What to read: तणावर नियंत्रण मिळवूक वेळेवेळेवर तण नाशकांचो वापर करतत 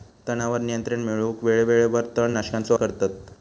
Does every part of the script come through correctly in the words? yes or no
no